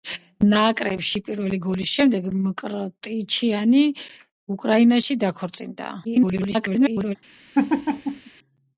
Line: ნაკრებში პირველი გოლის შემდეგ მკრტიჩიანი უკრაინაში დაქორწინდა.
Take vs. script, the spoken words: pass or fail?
fail